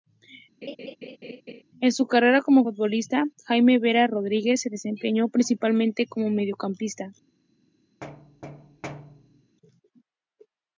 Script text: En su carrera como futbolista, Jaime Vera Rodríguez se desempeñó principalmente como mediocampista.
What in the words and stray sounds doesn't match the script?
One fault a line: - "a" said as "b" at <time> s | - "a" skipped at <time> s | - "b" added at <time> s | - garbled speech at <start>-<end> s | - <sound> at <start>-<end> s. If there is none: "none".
- laugh at 0.6-1.6 s
- thud at 8.0-9.6 s